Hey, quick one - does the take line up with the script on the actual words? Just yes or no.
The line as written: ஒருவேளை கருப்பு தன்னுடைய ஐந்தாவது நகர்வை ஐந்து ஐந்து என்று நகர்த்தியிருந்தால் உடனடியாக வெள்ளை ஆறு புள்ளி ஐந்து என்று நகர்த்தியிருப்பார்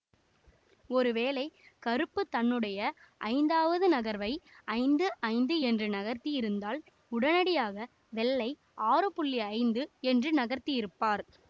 yes